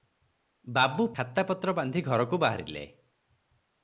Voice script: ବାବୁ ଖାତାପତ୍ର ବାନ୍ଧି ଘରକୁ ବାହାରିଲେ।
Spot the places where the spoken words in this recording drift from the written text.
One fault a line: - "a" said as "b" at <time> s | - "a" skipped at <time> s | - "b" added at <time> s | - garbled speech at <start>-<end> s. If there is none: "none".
none